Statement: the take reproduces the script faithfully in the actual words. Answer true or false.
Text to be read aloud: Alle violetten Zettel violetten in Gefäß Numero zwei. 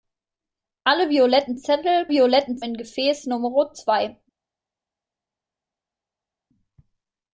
true